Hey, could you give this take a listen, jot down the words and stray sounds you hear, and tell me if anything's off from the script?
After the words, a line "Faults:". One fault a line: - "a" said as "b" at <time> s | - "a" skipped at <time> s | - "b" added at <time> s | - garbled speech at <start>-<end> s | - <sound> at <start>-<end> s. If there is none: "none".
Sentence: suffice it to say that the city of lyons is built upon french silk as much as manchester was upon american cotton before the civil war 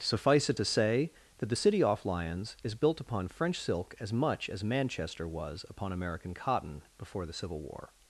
suffice it to say that the city off lyons is built upon french silk as much as manchester was upon american cotton before the civil war
Faults:
- "of" said as "off" at 1.8 s